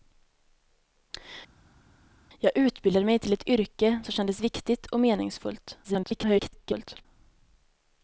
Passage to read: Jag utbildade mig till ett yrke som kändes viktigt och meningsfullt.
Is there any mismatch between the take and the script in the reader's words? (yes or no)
yes